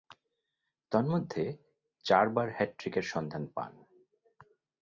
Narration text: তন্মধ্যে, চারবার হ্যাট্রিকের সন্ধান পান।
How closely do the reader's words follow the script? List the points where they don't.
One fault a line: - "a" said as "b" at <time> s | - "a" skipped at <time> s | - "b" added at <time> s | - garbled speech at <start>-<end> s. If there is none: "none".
none